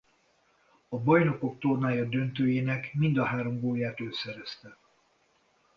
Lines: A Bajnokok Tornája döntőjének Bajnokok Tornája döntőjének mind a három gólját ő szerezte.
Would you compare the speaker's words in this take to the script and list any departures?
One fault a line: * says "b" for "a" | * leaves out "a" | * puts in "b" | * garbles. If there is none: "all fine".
* leaves out "Bajnokok Tornája döntőjének"